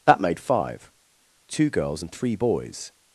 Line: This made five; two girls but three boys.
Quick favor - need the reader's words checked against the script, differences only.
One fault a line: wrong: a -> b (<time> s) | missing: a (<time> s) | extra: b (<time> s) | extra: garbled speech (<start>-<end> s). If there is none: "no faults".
wrong: This -> That (0.1 s)
wrong: but -> and (2.0 s)